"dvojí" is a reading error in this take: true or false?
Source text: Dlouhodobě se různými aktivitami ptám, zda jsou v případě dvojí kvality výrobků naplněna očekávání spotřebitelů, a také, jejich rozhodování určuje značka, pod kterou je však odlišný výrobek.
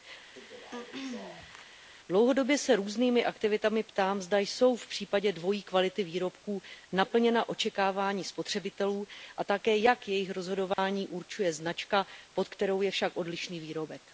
false